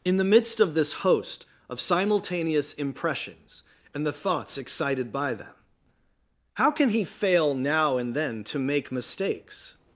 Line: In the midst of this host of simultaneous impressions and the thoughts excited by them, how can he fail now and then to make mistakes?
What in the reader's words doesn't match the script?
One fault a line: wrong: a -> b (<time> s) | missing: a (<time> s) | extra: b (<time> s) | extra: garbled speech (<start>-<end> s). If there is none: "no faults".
no faults